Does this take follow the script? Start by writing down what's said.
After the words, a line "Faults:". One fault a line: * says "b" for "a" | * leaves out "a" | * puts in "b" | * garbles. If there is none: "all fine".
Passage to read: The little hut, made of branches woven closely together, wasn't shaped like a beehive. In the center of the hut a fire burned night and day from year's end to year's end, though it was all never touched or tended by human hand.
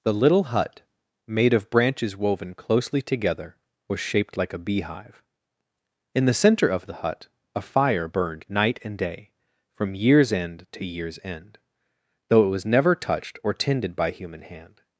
The little hut, made of branches woven closely together, was shaped like a beehive. In the center of the hut a fire burned night and day from year's end to year's end, though it was never touched or tended by human hand.
Faults:
* says "was" for "wasn't"
* leaves out "all"